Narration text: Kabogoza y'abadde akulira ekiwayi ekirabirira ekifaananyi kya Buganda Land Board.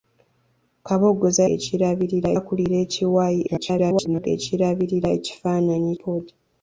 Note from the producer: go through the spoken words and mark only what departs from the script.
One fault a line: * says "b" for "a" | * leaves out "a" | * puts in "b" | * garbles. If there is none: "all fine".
* says "ekirabirira" for "y'abadde"
* garbles
* leaves out "kya Buganda Land"